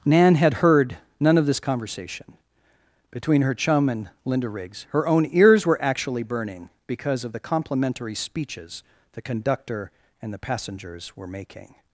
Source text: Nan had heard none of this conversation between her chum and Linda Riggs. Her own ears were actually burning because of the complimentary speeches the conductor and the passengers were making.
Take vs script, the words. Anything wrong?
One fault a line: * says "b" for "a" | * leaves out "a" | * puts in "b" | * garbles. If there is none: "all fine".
all fine